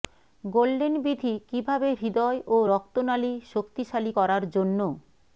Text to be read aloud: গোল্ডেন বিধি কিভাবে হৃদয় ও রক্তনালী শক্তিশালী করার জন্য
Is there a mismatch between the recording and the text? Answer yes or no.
no